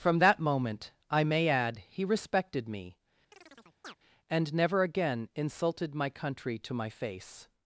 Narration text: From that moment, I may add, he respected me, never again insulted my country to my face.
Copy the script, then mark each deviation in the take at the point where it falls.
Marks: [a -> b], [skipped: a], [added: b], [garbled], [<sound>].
From that moment, I may add, he respected me, [chirp] [added: and] never again insulted my country to my face.